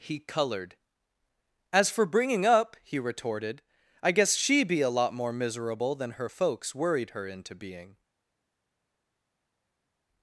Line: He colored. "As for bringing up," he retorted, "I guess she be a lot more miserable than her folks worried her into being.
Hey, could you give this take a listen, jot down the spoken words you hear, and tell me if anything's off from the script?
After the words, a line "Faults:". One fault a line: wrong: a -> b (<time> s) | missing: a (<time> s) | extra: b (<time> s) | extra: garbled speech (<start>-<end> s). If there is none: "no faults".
He colored. "As for bringing up," he retorted, "I guess she be a lot more miserable than her folks worried her into being.
Faults:
no faults